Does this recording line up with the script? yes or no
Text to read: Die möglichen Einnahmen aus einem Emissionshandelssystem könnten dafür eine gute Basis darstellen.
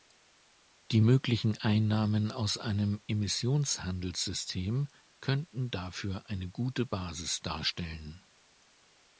yes